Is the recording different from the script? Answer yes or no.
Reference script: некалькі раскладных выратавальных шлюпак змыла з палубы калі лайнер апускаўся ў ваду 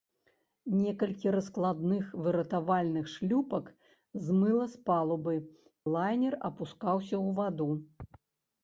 yes